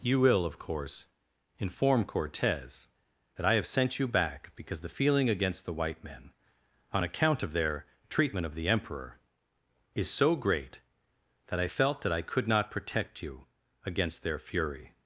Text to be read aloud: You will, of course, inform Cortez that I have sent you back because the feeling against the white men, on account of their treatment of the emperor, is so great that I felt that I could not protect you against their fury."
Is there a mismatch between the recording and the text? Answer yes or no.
no